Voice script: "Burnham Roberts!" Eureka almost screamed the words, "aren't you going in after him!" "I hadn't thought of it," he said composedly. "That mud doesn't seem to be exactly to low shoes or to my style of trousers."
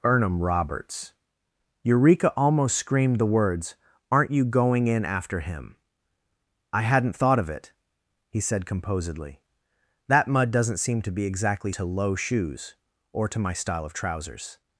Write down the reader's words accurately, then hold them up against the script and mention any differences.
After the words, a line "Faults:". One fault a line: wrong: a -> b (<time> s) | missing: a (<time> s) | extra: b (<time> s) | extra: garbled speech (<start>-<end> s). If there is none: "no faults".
"Burnham Roberts!" Eureka almost screamed the words, "aren't you going in after him!" "I hadn't thought of it," he said composedly. "That mud doesn't seem to be exactly to low shoes or to my style of trousers."
Faults:
no faults